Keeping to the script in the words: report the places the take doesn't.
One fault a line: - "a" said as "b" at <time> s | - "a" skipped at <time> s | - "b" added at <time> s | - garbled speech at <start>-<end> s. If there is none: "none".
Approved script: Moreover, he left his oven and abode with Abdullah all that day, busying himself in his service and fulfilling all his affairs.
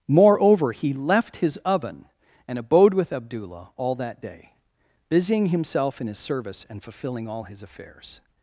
none